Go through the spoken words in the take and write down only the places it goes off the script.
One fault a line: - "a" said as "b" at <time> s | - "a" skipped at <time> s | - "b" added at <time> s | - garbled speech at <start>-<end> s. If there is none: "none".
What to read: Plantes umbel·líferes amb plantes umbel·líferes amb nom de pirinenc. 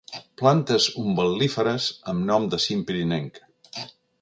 - "plantes umbel·líferes amb" skipped at 2.3 s
- "cim" added at 2.7 s